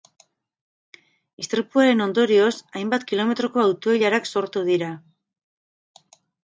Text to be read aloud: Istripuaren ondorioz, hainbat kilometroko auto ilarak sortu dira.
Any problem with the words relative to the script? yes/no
no